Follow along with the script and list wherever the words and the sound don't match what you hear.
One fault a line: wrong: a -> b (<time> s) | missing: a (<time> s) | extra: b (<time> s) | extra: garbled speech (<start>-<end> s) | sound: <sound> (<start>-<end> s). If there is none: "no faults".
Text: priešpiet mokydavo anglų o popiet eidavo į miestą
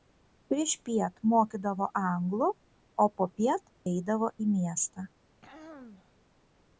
sound: throat clearing (5.4-6.2 s)